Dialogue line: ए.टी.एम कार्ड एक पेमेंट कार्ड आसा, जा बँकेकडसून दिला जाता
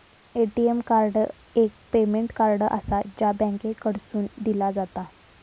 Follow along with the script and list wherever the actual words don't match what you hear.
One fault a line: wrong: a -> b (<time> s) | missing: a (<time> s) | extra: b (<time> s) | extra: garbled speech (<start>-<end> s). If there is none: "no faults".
no faults